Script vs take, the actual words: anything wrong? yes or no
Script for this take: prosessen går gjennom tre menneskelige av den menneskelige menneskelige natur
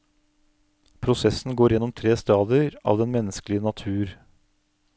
yes